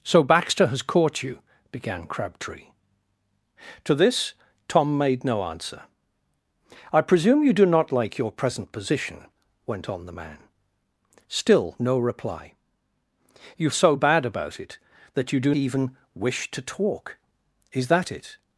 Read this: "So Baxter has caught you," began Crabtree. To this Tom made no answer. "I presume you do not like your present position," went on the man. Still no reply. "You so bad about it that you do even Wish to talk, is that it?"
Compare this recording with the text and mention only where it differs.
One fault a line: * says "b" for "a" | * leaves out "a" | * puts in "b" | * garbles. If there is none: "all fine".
all fine